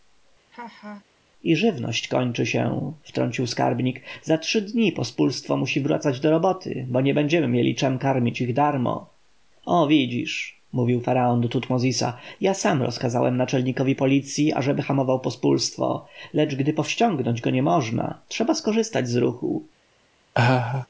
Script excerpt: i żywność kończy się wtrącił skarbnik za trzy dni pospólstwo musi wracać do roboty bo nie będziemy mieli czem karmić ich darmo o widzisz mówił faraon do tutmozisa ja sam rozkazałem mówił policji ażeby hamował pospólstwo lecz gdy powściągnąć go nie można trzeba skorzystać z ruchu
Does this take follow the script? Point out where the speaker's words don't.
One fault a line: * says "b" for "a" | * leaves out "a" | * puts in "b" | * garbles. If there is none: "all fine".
* says "naczelnikowi" for "mówił"